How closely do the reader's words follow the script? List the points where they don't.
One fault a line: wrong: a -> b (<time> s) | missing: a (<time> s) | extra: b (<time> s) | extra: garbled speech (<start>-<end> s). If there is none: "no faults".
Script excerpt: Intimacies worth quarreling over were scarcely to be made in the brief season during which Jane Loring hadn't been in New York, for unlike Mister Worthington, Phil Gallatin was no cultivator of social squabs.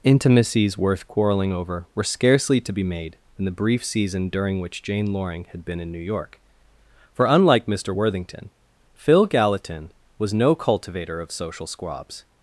wrong: hadn't -> had (5.5 s)